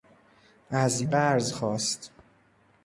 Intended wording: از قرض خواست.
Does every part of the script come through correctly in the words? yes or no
yes